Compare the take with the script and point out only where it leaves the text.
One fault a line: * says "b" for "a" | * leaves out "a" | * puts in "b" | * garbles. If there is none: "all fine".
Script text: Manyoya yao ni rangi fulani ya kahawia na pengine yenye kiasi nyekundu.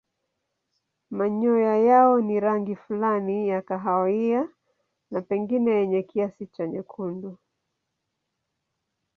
* puts in "cha"